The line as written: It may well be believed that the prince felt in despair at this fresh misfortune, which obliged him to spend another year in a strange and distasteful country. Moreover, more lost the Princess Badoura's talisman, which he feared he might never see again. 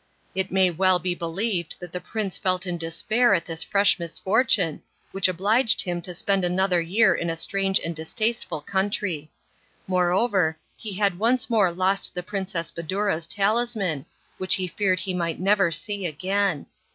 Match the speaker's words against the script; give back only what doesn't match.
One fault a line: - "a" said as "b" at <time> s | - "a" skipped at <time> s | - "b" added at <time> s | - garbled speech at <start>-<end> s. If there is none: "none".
- "he had once" added at 10.8 s